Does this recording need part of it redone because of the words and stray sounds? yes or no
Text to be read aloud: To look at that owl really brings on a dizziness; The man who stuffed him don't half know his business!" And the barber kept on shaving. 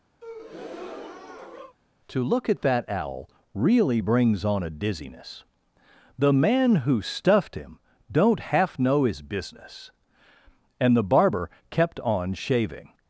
yes